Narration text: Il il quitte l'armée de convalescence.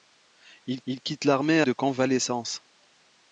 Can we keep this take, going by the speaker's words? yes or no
yes